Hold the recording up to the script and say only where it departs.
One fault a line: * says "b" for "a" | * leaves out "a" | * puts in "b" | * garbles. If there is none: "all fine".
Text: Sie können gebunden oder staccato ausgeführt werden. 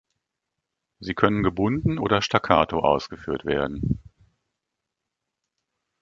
all fine